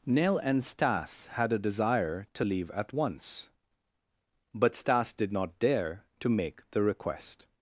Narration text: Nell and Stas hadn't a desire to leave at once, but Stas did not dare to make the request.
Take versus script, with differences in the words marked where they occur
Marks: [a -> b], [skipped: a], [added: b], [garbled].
Nell and Stas [hadn't -> had] a desire to leave at once, but Stas did not dare to make the request.